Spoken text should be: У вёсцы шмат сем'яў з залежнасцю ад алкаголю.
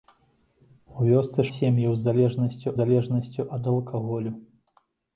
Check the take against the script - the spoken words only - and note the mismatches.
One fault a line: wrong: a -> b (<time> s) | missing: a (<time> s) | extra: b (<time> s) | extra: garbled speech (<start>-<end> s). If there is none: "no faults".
missing: шмат (1.4 s)
extra: залежнасцю (2.8 s)